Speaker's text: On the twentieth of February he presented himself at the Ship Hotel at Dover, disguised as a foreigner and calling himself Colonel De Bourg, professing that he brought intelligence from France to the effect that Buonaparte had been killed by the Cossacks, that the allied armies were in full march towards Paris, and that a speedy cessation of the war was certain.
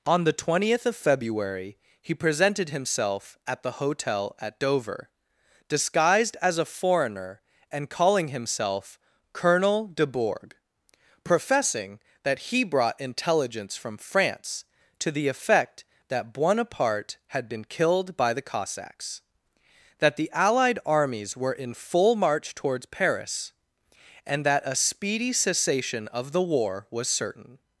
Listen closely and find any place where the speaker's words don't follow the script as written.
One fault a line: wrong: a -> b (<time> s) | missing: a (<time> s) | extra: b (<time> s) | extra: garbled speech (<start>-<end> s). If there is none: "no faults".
missing: Ship (3.7 s)